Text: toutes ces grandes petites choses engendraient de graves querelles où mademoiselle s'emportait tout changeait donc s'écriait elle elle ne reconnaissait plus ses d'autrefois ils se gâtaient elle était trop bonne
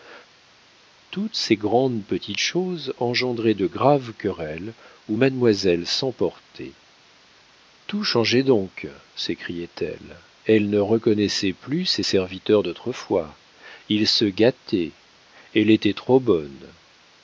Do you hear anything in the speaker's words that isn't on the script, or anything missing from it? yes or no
yes